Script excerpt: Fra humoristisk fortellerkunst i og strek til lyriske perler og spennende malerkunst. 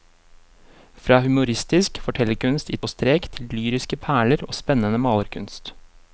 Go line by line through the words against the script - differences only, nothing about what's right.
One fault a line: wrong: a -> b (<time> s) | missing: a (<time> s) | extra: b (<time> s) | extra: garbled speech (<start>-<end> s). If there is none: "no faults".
no faults